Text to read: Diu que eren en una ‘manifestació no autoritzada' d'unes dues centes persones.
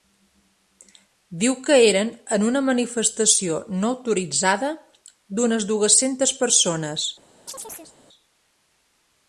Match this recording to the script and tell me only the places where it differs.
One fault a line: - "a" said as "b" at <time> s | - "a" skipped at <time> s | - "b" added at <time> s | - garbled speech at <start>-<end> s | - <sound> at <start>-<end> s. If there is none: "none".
- chirp at 7.5-8.0 s